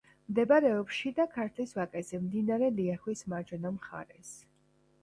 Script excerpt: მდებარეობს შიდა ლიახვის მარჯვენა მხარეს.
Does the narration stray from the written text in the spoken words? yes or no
yes